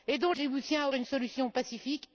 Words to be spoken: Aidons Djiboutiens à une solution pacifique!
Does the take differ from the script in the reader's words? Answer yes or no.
no